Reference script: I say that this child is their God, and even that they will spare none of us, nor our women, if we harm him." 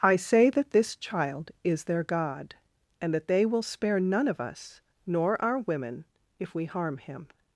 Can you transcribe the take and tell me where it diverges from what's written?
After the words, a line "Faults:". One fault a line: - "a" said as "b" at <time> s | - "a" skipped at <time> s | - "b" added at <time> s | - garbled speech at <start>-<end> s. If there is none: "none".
I say that this child is their God, and that they will spare none of us, nor our women, if we harm him."
Faults:
- "even" skipped at 3.1 s